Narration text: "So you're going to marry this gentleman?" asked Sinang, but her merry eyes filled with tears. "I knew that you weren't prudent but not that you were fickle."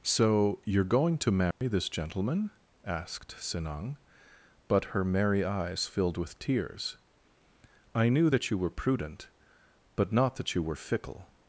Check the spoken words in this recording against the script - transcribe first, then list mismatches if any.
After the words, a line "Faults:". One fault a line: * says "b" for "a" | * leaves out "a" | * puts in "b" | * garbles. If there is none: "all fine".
"So you're going to marry this gentleman?" asked Sinang, but her merry eyes filled with tears. "I knew that you were prudent but not that you were fickle."
Faults:
* says "were" for "weren't"